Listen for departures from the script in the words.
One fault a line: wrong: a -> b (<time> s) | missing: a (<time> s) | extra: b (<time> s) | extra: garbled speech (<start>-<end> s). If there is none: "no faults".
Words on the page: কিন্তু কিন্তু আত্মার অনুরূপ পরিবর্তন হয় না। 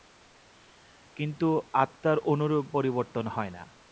missing: কিন্তু (1.5 s)